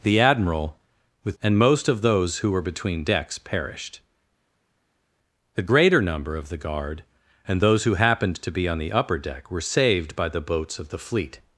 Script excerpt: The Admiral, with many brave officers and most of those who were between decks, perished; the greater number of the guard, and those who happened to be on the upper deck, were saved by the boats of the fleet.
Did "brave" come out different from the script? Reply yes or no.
yes